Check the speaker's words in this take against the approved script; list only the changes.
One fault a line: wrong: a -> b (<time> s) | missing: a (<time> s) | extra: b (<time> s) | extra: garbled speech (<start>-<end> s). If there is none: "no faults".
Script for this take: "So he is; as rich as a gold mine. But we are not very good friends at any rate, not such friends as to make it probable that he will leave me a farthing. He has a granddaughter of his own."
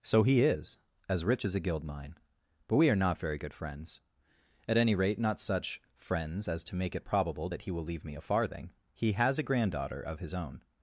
wrong: gold -> guild (1.6 s)